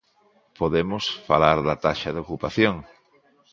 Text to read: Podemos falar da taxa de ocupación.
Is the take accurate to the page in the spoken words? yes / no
yes